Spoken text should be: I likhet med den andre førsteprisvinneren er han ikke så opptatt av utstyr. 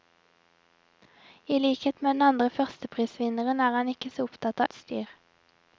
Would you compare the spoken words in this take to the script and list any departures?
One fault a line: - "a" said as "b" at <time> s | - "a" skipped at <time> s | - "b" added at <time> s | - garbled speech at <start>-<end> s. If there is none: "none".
- "av" skipped at 4.7 s